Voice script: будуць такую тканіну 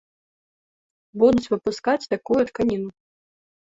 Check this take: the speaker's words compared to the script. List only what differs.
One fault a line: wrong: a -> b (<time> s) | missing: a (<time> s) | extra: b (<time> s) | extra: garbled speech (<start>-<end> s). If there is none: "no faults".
extra: выпускаць (1.5 s)